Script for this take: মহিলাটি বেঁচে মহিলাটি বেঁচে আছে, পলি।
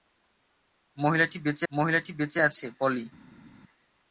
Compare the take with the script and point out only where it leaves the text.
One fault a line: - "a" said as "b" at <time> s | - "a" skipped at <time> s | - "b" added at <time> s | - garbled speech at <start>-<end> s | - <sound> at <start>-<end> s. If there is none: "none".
none